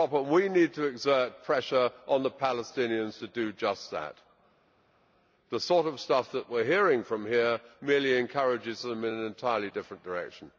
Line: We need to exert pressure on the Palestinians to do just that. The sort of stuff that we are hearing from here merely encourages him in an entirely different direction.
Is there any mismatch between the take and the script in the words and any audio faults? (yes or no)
yes